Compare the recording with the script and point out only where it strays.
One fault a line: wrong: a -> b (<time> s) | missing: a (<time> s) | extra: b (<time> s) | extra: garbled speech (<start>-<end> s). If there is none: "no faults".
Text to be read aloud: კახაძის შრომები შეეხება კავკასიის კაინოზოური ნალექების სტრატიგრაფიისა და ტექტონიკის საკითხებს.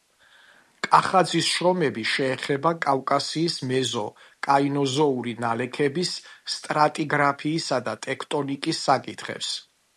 extra: მეზო (3.7 s)